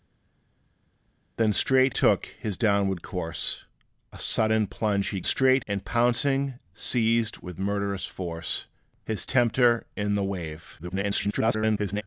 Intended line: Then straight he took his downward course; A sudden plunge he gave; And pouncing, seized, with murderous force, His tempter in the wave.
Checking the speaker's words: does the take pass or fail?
fail